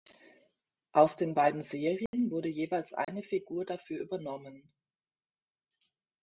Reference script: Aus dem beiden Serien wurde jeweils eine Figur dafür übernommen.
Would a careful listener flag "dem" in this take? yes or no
yes